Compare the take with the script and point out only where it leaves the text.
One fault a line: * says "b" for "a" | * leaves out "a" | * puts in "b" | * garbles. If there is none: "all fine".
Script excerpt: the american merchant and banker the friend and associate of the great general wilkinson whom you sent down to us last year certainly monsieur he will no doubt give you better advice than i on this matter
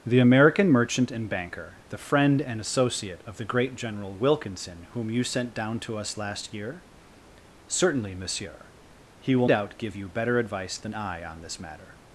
* leaves out "no"